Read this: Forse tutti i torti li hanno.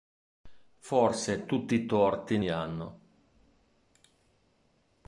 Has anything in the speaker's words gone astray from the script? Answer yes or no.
no